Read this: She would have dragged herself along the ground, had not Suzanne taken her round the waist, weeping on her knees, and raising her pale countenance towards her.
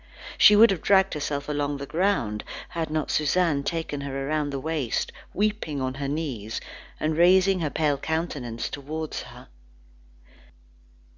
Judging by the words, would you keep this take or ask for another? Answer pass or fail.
pass